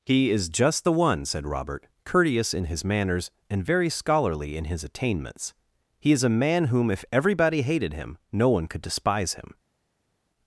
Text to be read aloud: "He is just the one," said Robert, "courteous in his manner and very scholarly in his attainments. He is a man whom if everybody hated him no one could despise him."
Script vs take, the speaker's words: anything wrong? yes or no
yes